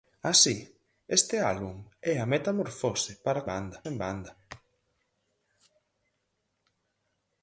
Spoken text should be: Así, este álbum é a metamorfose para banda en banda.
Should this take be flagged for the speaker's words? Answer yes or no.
no